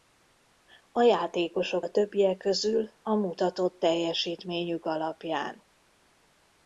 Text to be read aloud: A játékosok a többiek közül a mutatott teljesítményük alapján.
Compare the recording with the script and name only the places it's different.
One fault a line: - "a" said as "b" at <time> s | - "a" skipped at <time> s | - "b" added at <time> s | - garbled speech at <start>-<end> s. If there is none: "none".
none